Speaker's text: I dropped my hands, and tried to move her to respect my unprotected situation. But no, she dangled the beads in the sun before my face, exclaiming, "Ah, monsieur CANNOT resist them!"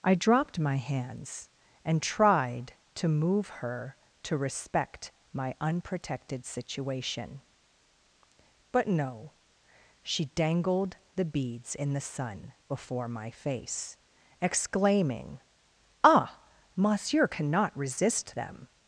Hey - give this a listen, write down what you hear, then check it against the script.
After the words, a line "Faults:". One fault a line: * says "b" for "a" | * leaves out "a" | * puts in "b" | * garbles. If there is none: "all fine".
I dropped my hands, and tried to move her to respect my unprotected situation. But no, she dangled the beads in the sun before my face, exclaiming, "Ah, monsieur CANNOT resist them!"
Faults:
all fine